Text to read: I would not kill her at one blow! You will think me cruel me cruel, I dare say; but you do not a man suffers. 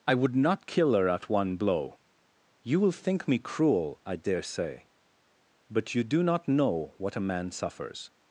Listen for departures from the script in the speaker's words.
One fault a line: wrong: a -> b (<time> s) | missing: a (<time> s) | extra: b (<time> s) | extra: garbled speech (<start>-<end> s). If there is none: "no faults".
missing: me cruel (4.0 s)
extra: know what (6.5 s)